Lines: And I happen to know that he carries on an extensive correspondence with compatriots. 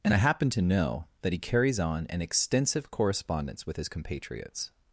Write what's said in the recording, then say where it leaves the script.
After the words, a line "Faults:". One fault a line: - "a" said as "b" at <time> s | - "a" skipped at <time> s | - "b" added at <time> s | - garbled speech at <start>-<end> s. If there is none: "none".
And I happen to know that he carries on an extensive correspondence with his compatriots.
Faults:
- "his" added at 3.8 s